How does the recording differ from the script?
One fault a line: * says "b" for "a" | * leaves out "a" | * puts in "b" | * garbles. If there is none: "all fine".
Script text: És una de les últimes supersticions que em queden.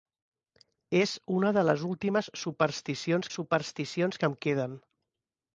* puts in "supersticions"